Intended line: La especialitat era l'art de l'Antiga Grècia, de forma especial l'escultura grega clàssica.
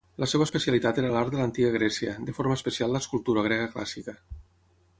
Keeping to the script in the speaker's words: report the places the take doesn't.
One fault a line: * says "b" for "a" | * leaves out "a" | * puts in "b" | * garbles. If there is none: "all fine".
* puts in "seva"